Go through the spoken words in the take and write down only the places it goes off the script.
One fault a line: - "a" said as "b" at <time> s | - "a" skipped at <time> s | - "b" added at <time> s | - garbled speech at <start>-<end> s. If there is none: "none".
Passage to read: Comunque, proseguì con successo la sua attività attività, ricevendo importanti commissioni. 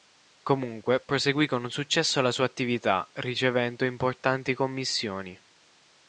- "attività" skipped at 3.1 s